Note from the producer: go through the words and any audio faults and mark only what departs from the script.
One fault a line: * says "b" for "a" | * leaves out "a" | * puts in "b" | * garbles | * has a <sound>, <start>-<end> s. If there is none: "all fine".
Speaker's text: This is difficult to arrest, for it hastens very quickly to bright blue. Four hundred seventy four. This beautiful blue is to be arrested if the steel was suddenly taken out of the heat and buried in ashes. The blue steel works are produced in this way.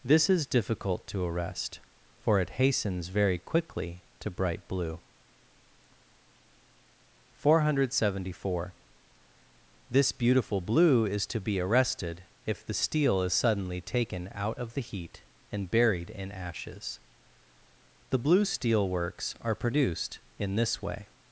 * says "is" for "was"